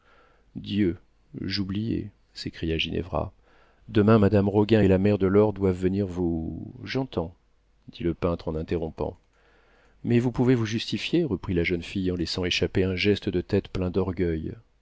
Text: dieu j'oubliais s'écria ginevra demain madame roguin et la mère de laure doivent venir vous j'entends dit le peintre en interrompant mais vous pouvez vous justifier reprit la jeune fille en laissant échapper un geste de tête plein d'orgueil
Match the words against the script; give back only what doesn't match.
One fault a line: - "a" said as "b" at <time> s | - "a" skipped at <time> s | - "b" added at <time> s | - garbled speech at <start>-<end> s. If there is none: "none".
none